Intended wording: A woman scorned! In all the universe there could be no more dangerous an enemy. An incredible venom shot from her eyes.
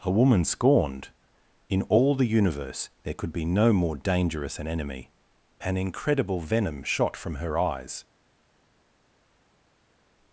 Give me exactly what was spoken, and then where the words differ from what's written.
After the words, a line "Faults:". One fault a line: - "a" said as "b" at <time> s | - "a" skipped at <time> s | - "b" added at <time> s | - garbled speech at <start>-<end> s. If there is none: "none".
A woman scorned! In all the universe there could be no more dangerous an enemy. An incredible venom shot from her eyes.
Faults:
none